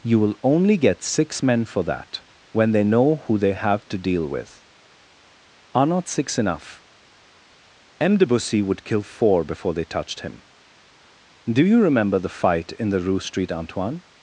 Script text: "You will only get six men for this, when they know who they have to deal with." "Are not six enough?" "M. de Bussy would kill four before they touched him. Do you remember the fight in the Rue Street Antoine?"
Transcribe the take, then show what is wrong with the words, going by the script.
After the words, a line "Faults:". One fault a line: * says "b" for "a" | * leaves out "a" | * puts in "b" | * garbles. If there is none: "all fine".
"You will only get six men for that, when they know who they have to deal with." "Are not six enough?" "M. de Bussy would kill four before they touched him. Do you remember the fight in the Rue Street Antoine?"
Faults:
* says "that" for "this"